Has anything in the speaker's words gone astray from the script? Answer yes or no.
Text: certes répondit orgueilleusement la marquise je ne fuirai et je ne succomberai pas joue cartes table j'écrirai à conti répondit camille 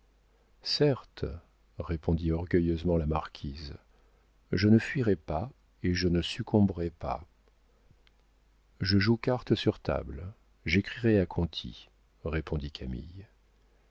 yes